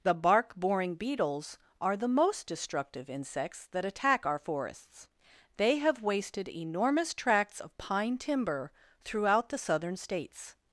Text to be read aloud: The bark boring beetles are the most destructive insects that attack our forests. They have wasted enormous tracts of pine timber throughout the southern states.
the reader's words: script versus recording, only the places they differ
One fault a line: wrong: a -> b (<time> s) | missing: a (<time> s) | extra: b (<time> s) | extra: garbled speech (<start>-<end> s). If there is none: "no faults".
no faults